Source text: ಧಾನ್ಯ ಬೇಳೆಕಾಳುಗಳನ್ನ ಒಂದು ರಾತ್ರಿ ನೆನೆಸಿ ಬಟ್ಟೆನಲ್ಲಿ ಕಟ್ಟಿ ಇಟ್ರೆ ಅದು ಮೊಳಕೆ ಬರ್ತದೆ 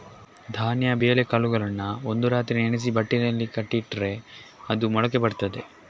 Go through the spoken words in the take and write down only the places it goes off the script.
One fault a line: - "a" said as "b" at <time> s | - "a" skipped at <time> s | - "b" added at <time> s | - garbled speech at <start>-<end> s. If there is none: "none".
none